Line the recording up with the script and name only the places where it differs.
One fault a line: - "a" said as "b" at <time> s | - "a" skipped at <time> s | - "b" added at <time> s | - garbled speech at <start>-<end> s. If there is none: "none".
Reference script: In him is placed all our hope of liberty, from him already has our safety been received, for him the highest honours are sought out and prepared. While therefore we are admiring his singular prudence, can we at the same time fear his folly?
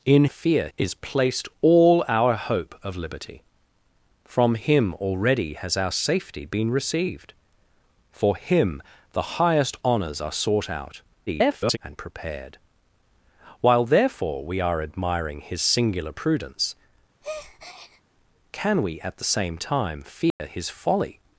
- "him" said as "fear" at 0.3 s
- garbled speech at 11.3-11.8 s